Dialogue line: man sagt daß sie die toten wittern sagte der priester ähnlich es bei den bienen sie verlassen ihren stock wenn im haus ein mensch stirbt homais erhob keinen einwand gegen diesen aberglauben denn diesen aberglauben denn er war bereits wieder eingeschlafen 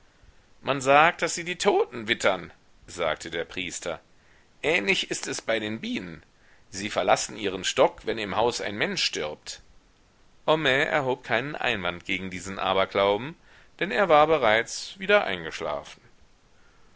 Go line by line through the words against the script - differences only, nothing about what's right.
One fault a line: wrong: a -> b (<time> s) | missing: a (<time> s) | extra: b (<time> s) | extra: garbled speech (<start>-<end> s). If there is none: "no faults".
extra: ist (5.1 s)
missing: diesen aberglauben denn (13.9 s)